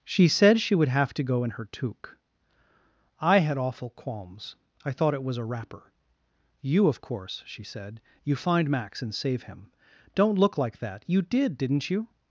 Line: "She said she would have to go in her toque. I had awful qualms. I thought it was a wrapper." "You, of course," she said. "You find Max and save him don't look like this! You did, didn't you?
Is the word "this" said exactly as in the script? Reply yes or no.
no